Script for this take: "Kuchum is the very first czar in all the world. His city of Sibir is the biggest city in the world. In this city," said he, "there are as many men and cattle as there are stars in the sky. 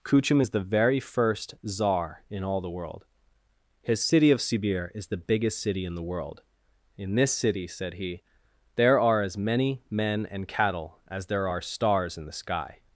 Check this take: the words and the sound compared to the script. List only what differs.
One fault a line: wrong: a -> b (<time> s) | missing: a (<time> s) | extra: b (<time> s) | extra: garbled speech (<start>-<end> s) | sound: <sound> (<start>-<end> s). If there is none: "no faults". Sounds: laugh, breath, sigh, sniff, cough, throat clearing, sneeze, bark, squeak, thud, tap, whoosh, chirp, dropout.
no faults